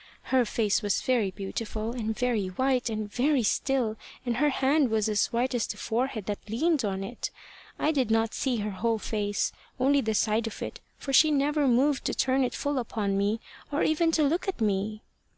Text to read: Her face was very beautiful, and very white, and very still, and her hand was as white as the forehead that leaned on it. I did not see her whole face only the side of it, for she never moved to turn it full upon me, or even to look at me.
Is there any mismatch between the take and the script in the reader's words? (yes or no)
no